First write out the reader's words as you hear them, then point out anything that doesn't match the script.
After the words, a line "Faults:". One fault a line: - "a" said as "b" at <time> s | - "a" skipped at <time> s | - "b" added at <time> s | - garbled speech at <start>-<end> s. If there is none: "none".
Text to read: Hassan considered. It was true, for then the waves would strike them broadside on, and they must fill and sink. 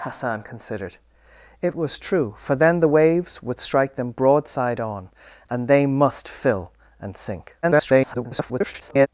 Hassan considered. It was true, for then the waves would strike them broadside on, and they must fill and sink. [garbled]
Faults:
- garbled speech at 7.6-9.1 s